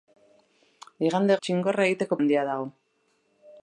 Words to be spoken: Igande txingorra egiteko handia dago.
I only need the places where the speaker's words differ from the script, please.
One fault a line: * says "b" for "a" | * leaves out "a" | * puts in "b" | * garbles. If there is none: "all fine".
all fine